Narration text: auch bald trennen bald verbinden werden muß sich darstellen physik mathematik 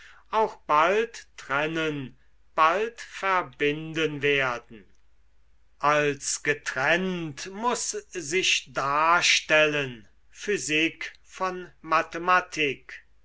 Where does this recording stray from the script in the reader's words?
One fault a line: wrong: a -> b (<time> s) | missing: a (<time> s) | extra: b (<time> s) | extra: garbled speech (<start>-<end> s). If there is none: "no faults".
extra: als getrennt (5.8 s)
extra: von (11.2 s)